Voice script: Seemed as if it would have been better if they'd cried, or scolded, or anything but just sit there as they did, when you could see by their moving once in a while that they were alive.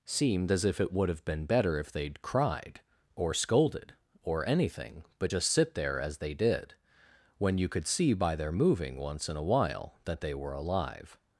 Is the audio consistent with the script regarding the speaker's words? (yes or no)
yes